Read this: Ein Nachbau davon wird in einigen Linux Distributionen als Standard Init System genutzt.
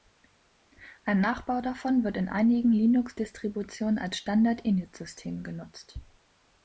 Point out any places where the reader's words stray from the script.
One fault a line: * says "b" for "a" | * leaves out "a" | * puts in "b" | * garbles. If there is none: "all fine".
all fine